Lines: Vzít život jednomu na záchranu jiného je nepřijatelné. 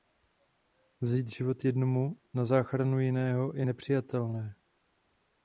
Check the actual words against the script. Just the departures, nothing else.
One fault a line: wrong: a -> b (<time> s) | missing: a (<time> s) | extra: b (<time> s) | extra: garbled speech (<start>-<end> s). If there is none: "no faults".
no faults